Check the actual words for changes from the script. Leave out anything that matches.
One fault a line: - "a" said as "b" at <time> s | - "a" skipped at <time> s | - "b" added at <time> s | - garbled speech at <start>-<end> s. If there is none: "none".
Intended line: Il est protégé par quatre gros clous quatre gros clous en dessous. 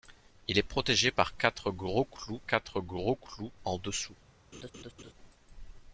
none